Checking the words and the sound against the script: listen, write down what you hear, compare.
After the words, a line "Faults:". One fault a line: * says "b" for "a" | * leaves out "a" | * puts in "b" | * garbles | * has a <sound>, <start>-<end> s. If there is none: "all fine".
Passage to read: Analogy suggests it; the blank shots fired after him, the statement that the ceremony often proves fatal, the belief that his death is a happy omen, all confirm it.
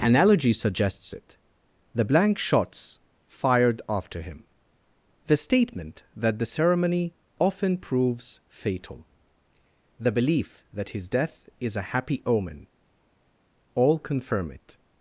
Analogy suggests it; the blank shots fired after him, the statement that the ceremony often proves fatal, the belief that his death is a happy omen, all confirm it.
Faults:
all fine